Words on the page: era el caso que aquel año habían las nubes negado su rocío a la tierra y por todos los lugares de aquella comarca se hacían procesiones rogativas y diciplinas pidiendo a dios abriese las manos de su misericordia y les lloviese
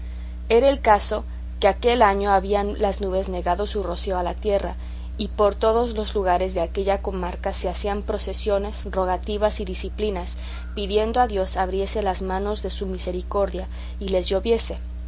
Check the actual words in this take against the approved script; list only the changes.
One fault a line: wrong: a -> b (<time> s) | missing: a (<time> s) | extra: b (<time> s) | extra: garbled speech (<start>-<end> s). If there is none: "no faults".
no faults